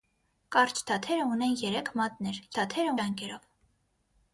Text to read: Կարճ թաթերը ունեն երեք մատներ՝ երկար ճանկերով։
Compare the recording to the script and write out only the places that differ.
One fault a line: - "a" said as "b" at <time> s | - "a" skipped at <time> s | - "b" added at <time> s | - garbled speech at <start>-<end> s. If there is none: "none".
- "երկար" said as "թաթերը" at 2.5 s